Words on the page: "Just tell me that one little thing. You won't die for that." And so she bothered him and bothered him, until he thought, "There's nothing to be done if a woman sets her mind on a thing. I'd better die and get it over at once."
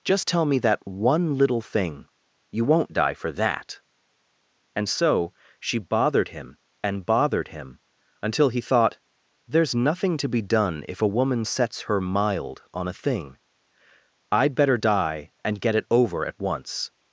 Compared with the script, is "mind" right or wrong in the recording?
wrong